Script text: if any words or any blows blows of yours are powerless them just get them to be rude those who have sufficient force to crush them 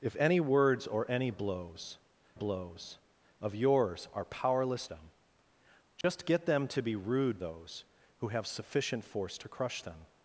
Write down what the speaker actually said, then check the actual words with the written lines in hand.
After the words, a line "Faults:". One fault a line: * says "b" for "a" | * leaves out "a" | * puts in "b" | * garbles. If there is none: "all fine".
if any words or any blows blows of yours are powerless them just get them to be rude those who have sufficient force to crush them
Faults:
all fine